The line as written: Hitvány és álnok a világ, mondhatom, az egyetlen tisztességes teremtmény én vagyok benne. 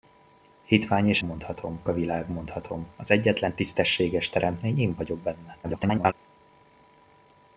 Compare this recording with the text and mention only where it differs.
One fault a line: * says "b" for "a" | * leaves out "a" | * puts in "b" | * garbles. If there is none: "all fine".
* says "mondhatom" for "álnok"
* garbles